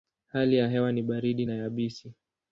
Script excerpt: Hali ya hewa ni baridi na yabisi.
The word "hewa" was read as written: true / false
true